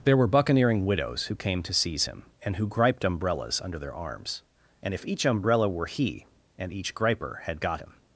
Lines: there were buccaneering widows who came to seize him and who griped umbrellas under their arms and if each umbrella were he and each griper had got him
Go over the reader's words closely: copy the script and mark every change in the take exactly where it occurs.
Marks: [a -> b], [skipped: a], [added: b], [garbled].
there were buccaneering widows who came to seize him and who griped umbrellas under their arms and if each umbrella were he and each griper had got him